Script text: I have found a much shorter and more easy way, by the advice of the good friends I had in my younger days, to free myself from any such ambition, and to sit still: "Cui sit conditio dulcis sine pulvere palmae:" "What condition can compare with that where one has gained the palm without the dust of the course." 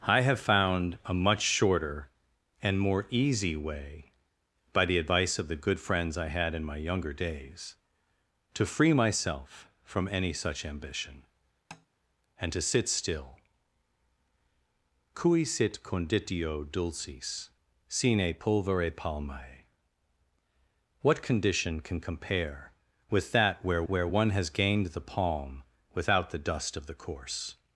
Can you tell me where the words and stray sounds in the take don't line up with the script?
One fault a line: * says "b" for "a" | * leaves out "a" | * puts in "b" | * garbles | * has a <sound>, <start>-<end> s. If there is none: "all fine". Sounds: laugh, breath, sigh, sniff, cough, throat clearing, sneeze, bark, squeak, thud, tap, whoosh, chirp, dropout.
* has a tap, 11.7-11.9 s
* puts in "where"